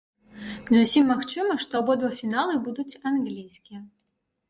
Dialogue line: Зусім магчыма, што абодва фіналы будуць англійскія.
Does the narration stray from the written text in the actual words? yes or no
no